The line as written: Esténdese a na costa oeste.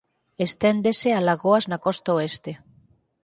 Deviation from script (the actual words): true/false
true